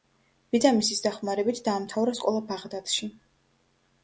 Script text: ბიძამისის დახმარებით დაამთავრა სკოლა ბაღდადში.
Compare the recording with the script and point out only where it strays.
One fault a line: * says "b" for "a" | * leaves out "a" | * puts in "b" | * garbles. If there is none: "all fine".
all fine